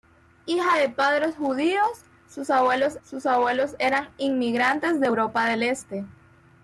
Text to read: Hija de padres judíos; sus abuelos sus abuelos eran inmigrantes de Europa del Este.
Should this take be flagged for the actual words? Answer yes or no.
no